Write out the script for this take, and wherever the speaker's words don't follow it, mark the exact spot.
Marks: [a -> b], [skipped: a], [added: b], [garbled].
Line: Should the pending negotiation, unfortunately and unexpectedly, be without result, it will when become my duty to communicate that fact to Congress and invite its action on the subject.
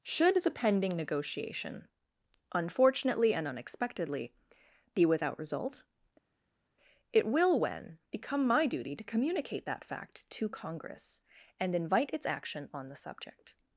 Should the pending negotiation, unfortunately and unexpectedly, be without result, it will when become my duty to communicate that fact to Congress and invite its action on the subject.